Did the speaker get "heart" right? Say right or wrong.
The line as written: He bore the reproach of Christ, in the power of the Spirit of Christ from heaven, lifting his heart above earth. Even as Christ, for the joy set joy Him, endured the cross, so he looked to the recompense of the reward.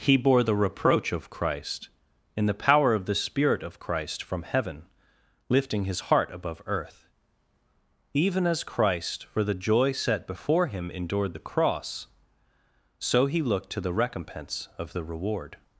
right